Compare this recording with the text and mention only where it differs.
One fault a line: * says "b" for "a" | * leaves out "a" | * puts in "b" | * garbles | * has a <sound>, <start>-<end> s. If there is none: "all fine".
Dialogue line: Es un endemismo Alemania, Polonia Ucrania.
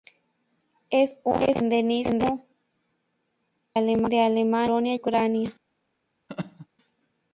* has a laugh, 6.3-6.7 s